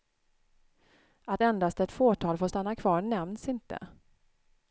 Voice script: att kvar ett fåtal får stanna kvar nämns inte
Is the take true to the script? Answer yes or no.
no